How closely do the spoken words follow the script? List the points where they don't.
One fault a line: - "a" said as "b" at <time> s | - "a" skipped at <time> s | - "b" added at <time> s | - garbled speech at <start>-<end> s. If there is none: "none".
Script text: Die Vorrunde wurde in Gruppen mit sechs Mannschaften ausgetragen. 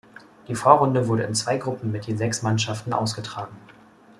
- "zwei" added at 1.3 s
- "je" added at 2.1 s